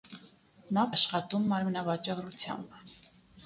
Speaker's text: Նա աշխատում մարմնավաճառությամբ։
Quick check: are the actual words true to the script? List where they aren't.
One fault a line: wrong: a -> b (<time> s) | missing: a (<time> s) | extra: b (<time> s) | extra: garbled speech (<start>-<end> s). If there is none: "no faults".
no faults